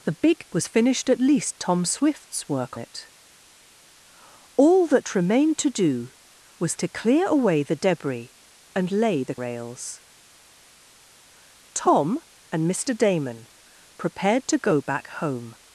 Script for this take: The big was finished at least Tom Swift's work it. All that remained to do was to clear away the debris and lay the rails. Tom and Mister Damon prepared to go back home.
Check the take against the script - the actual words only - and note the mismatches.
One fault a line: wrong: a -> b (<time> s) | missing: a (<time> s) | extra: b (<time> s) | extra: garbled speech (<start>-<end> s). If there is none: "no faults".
no faults